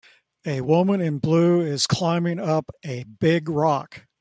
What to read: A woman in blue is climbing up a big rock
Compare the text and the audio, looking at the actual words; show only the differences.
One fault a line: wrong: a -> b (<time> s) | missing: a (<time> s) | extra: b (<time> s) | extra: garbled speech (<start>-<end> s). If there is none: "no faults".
no faults